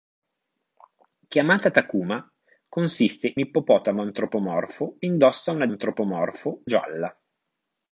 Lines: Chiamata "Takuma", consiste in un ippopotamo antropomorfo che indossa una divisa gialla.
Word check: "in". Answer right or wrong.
wrong